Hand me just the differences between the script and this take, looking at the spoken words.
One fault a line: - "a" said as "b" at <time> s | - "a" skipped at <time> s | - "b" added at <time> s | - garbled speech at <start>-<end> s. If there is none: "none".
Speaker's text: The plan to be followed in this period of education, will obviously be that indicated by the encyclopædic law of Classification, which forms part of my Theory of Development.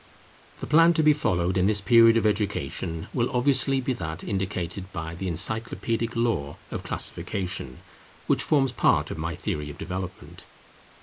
none